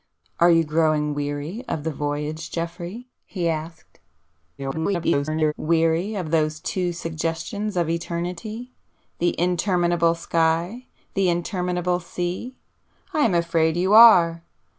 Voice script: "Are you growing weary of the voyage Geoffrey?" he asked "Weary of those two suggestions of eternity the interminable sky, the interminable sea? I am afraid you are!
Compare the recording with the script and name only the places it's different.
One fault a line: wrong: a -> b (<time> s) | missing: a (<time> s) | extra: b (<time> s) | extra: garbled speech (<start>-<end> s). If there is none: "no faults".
extra: garbled speech (4.6-5.5 s)